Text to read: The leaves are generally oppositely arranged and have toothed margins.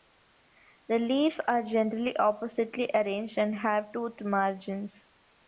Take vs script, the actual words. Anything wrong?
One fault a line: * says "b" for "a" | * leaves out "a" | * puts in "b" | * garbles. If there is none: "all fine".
all fine